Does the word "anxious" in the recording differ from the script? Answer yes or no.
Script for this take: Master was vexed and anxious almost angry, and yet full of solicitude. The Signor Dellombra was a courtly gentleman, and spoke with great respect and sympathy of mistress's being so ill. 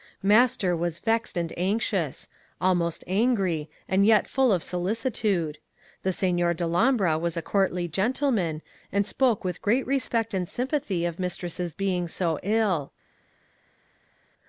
no